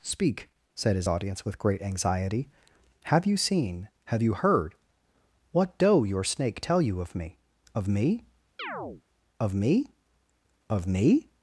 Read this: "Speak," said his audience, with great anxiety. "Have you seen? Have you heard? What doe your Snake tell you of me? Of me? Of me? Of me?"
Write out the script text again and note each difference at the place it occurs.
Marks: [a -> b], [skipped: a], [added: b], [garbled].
"Speak," said his audience, with great anxiety. "Have you seen? Have you heard? What doe your Snake tell you of me? Of me? Of me? Of me?"